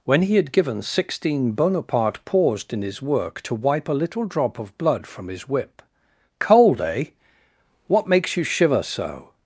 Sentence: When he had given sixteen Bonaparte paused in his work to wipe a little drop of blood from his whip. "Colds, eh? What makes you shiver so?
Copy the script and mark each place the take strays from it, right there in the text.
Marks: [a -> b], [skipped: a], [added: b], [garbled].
When he had given sixteen Bonaparte paused in his work to wipe a little drop of blood from his whip. ["Colds, -> Cold] eh? What makes you shiver so?